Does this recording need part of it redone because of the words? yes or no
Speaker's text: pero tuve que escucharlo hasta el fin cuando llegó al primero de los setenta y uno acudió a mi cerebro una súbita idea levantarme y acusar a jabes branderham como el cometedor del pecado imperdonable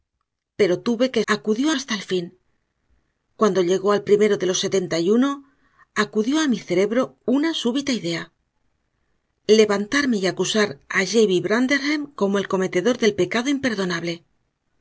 yes